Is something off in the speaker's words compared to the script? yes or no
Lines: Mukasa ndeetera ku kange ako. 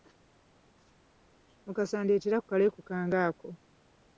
yes